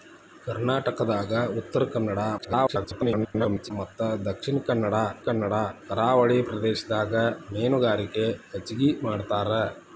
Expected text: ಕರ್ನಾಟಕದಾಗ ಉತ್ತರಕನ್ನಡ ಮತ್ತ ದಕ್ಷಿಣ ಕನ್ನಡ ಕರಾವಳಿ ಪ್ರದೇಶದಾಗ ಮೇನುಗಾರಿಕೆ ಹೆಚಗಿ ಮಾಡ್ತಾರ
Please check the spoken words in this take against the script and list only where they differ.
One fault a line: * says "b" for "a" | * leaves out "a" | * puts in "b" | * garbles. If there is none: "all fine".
* garbles
* puts in "ಕನ್ನಡ"